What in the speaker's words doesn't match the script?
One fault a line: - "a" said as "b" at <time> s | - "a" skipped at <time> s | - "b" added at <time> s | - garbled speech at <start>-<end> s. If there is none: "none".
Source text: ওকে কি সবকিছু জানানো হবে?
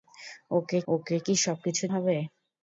- "ওকে" added at 0.9 s
- "জানানো" skipped at 1.8 s